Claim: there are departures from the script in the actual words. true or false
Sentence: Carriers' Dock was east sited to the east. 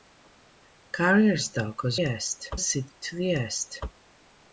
false